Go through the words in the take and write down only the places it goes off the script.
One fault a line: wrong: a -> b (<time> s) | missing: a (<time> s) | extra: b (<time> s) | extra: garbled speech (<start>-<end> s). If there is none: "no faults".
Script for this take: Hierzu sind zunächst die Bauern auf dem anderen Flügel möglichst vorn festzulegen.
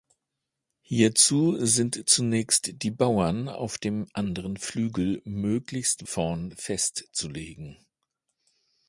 no faults